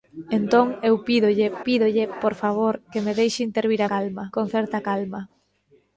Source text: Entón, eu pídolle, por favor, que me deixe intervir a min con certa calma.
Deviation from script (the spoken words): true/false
true